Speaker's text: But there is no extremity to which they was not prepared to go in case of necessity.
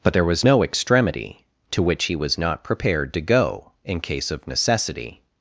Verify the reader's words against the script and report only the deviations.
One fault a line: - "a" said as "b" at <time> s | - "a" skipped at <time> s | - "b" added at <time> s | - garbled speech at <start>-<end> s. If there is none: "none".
- "is" said as "was" at 0.2 s
- "they" said as "he" at 2.0 s